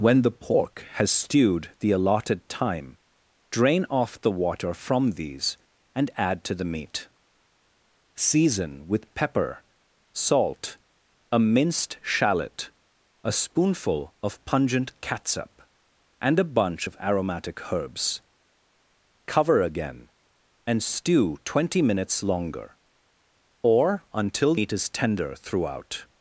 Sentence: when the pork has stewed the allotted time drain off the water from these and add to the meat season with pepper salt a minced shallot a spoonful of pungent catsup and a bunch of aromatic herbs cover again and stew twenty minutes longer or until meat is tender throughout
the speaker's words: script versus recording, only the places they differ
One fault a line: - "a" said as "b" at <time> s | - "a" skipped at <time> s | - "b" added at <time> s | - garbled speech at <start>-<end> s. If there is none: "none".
none